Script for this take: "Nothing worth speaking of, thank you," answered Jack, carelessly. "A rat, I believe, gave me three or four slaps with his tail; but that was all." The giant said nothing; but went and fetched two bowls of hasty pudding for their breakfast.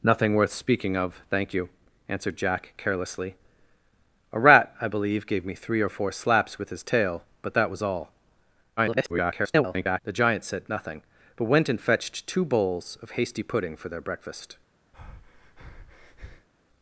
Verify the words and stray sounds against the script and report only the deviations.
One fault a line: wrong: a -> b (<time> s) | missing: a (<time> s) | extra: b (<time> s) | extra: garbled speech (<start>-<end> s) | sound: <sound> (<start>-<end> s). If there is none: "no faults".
extra: garbled speech (8.8-10.0 s)
sound: breath (14.9-16.5 s)